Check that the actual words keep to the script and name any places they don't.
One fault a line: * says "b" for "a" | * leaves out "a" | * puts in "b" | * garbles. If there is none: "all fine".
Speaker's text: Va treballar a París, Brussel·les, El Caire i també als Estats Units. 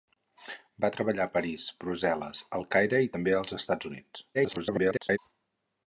* garbles